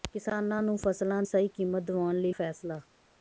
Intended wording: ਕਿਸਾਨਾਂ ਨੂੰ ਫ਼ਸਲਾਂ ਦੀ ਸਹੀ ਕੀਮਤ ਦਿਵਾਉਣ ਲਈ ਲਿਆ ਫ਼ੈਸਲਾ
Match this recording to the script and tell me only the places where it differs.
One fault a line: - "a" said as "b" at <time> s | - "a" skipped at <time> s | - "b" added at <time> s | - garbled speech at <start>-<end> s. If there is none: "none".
- "ਦੀ" skipped at 1.2 s
- "ਲਿਆ" skipped at 2.3 s